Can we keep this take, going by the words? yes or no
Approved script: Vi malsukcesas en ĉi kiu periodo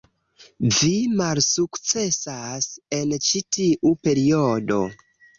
no